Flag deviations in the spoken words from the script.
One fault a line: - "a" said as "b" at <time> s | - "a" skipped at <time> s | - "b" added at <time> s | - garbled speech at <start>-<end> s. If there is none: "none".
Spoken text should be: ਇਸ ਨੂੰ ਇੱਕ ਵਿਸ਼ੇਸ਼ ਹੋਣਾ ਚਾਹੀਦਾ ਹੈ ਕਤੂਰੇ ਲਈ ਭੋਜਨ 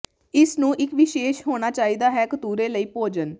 none